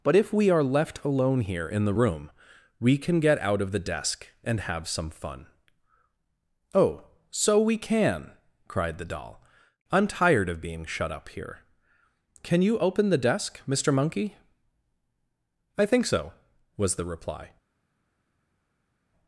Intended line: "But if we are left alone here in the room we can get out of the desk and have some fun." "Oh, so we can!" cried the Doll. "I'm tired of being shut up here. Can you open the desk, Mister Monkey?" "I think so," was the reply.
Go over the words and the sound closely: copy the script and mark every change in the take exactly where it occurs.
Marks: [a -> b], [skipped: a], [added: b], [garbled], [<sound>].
"But if we are left alone here in the room we can get out of the desk and have some fun." "Oh, so we can!" cried the Doll. "I'm tired of being shut up here. Can you open the desk, Mister Monkey?" "I think so," was the reply.